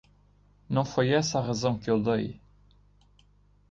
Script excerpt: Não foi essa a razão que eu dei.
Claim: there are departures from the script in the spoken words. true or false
false